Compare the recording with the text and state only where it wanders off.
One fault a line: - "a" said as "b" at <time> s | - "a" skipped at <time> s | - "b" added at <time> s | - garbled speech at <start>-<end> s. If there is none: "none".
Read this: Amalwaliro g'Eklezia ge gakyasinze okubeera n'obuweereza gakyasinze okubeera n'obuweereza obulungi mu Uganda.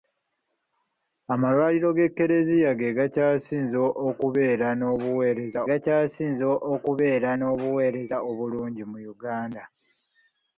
none